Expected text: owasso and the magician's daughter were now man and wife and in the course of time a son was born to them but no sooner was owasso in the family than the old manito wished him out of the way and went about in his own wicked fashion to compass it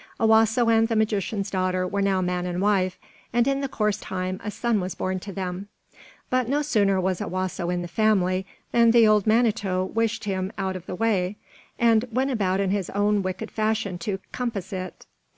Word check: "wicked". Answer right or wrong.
right